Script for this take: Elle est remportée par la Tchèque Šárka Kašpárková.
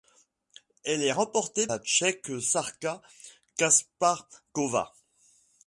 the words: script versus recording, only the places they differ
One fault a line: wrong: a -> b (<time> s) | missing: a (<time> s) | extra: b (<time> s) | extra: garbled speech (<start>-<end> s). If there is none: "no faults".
missing: par (1.7 s)